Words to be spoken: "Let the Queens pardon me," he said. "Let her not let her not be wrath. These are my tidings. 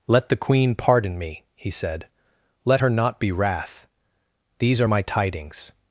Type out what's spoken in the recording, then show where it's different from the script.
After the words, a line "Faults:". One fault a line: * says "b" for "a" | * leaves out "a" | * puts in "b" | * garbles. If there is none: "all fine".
"Let the Queen pardon me," he said. "Let her not be wrath. These are my tidings.
Faults:
* says "Queen" for "Queens"
* leaves out "let her not"